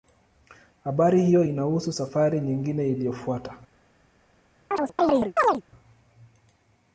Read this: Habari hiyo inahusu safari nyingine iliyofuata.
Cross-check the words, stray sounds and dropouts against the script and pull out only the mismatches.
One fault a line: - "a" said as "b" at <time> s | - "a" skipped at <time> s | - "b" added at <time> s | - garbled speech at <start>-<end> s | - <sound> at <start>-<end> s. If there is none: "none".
- chirp at 4.7-5.6 s